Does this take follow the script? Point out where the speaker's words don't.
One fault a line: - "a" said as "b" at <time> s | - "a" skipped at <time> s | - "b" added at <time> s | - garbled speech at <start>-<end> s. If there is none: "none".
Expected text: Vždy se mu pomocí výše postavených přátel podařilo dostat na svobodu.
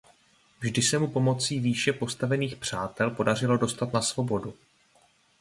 none